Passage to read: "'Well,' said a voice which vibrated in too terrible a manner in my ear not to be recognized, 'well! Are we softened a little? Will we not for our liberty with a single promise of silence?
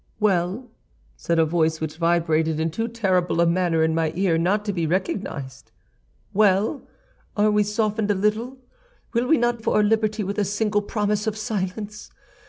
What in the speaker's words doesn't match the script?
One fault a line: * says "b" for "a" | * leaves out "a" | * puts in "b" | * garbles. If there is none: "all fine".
all fine